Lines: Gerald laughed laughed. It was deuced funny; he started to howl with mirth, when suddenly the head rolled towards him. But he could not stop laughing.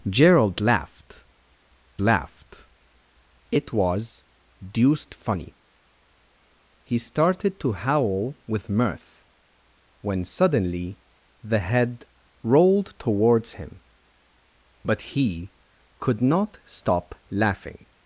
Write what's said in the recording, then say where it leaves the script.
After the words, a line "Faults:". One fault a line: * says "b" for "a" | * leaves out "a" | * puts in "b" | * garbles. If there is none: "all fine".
Gerald laughed laughed. It was deuced funny; he started to howl with mirth, when suddenly the head rolled towards him. But he could not stop laughing.
Faults:
all fine